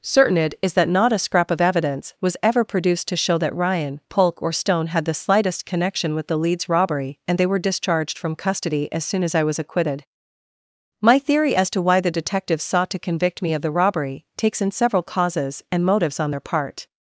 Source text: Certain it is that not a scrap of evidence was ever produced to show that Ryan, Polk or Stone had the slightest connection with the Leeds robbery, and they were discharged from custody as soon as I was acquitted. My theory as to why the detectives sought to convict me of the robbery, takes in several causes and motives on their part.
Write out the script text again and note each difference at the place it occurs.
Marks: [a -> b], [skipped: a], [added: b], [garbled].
Certain it is that not a scrap of evidence was ever produced to show that Ryan, Polk or Stone had the slightest connection with the Leeds robbery, and they were discharged from custody as soon as I was acquitted. My theory as to why the detectives sought to convict me of the robbery, takes in several causes and motives on their part.